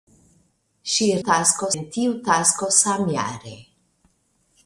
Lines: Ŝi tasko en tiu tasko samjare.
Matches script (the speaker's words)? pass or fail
pass